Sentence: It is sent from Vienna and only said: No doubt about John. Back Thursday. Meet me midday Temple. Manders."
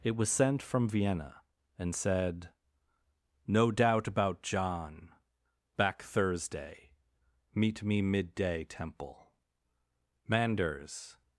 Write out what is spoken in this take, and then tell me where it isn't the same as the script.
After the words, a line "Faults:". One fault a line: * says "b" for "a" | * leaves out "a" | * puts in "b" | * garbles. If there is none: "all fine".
It was sent from Vienna and said: No doubt about John. Back Thursday. Meet me midday Temple. Manders."
Faults:
* says "was" for "is"
* leaves out "only"